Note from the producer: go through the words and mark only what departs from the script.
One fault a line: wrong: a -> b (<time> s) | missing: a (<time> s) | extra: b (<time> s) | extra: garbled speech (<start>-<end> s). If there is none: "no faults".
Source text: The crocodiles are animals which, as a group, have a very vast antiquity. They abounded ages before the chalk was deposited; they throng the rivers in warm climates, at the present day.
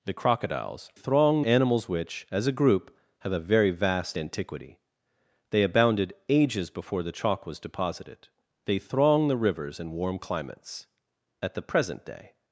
wrong: are -> throng (0.9 s)